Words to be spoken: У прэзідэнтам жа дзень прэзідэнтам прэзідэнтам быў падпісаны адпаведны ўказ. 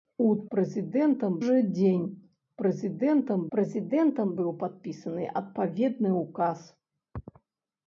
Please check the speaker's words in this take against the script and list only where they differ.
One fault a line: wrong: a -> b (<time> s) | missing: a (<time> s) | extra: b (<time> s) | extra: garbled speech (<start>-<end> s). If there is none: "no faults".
no faults